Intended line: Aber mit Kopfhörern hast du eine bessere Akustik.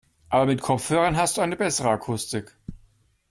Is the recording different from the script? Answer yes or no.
no